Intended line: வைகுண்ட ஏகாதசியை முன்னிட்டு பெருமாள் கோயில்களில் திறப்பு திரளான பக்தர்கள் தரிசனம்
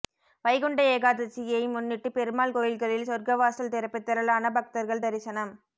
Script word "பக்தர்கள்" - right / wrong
right